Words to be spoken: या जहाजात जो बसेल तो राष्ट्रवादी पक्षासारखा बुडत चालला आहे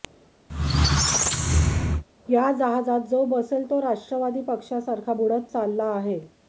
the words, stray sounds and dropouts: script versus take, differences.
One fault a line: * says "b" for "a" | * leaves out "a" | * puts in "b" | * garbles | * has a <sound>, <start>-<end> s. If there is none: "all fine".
* has a squeak, 0.5-2.0 s